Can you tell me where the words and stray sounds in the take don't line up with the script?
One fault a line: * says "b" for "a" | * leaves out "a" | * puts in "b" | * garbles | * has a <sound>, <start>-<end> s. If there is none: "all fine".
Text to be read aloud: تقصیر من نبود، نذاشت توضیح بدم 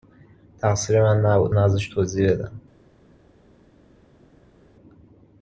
all fine